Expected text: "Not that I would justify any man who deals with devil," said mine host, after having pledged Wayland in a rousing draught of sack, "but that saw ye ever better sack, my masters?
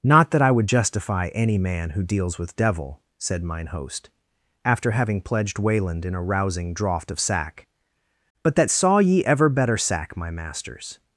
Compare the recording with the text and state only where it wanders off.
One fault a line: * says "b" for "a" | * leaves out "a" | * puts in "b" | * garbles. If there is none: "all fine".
all fine